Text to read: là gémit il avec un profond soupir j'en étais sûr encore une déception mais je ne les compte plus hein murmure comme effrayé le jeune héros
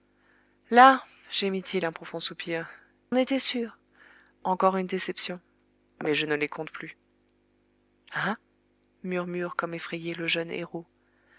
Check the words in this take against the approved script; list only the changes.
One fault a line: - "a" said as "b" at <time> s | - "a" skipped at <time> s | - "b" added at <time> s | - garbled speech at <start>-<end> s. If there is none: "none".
- "avec" skipped at 1.9 s
- "j'en" skipped at 2.7 s